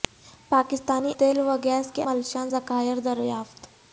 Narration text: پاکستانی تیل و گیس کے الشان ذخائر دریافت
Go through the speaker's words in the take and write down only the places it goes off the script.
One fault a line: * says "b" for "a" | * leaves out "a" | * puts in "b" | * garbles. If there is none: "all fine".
all fine